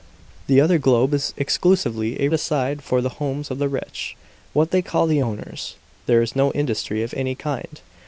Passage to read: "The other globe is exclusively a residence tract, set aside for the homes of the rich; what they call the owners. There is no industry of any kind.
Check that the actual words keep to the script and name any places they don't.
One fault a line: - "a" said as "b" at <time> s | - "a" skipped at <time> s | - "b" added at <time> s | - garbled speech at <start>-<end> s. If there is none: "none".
- "residence tract set" skipped at 2.3 s